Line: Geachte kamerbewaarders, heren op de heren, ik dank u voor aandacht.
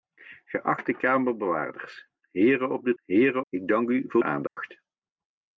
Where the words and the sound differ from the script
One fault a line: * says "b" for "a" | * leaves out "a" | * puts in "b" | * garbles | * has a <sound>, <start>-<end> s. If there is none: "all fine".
* has a dropout, 4.5-4.6 s